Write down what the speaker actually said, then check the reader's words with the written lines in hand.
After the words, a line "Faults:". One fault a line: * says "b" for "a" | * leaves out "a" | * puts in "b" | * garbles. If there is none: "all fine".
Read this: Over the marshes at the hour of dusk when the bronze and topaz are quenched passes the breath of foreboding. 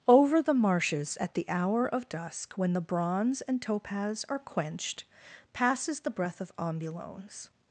Over the marshes at the hour of dusk when the bronze and topaz are quenched passes the breath of ambulones.
Faults:
* says "ambulones" for "foreboding"